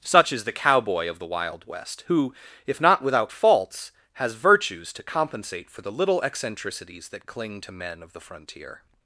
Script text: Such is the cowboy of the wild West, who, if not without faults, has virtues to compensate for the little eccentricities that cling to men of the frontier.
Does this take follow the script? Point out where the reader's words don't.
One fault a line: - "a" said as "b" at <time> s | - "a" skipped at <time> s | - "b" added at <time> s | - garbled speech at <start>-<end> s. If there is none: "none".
none